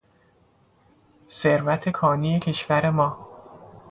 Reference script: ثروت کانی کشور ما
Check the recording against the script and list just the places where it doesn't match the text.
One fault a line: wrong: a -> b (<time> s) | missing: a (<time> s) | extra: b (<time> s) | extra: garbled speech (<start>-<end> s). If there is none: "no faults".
no faults